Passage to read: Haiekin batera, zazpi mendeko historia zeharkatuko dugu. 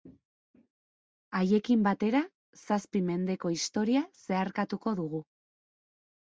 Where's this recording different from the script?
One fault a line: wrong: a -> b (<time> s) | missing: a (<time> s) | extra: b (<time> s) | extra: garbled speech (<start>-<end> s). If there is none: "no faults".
no faults